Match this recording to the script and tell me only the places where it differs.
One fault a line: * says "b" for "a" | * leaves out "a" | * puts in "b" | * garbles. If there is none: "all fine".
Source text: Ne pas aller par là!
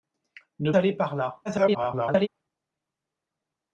* leaves out "pas"
* garbles